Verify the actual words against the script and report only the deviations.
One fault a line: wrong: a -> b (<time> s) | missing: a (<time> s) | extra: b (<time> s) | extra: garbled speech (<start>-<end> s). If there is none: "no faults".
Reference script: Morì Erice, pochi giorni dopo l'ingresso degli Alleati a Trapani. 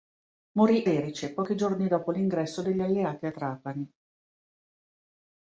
no faults